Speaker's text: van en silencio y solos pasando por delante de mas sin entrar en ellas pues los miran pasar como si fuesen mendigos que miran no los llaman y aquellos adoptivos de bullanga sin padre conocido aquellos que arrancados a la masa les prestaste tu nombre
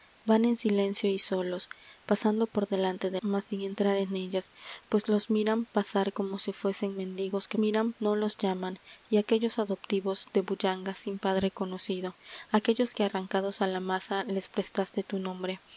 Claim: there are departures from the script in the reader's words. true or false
false